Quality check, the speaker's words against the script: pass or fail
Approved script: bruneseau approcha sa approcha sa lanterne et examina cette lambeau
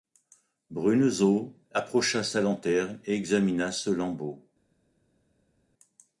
fail